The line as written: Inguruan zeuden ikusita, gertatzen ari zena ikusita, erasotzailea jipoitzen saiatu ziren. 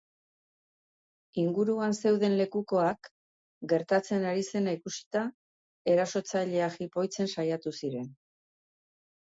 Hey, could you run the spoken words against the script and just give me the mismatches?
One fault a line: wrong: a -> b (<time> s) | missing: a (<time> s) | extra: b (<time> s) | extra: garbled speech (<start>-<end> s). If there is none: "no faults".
wrong: ikusita -> lekukoak (2.4 s)